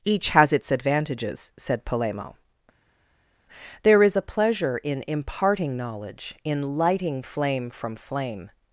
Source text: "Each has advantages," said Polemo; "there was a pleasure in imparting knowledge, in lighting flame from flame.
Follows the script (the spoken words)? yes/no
no